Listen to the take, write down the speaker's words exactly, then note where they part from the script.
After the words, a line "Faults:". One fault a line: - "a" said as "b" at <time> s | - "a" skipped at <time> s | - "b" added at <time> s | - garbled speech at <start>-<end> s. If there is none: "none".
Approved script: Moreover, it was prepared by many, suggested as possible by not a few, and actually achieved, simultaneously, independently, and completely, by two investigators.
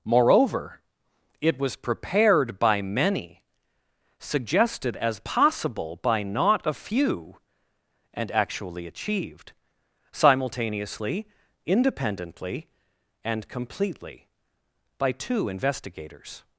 Moreover, it was prepared by many, suggested as possible by not a few, and actually achieved, simultaneously, independently, and completely, by two investigators.
Faults:
none